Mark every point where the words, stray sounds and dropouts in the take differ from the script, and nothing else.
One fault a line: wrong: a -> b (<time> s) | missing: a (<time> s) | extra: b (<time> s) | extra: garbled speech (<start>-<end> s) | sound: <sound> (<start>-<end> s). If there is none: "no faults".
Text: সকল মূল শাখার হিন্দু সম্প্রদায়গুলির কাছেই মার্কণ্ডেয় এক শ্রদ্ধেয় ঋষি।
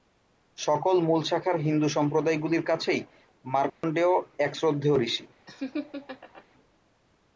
sound: dropout (3.7-3.8 s)
sound: laugh (5.5-6.4 s)